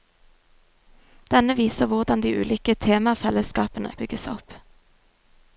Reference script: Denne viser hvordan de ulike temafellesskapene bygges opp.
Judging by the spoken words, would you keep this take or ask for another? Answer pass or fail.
pass